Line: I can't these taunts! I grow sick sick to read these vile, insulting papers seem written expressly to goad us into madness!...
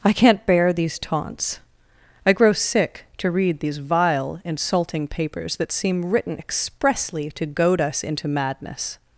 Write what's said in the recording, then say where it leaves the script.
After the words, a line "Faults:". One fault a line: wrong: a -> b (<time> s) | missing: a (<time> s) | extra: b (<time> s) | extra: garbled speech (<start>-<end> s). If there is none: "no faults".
I can't bear these taunts! I grow sick to read these vile, insulting papers that seem written expressly to goad us into madness!...
Faults:
extra: bear (0.5 s)
missing: sick (3.0 s)
extra: that (5.6 s)